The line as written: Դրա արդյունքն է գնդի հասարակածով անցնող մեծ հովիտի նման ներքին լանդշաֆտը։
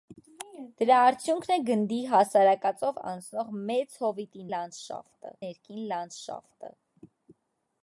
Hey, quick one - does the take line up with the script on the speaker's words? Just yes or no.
no